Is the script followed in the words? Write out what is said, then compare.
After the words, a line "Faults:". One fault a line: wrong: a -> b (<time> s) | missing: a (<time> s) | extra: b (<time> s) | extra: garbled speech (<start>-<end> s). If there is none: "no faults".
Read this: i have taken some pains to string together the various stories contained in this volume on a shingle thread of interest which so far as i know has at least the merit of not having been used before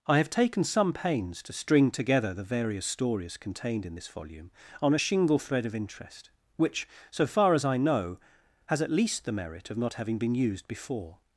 i have taken some pains to string together the various stories contained in this volume on a shingle thread of interest which so far as i know has at least the merit of not having been used before
Faults:
no faults